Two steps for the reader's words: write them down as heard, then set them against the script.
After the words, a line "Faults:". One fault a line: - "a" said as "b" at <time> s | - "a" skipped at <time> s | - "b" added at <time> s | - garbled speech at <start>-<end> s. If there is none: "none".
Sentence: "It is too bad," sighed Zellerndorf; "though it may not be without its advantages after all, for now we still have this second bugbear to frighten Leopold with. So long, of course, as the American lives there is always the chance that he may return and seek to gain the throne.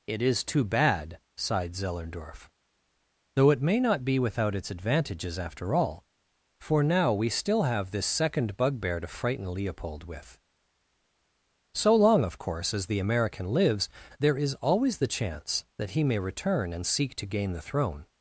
"It is too bad," sighed Zellerndorf; "though it may not be without its advantages after all, for now we still have this second bugbear to frighten Leopold with. So long, of course, as the American lives there is always the chance that he may return and seek to gain the throne.
Faults:
none